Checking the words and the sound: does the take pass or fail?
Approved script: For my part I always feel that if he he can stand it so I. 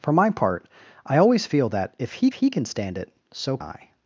pass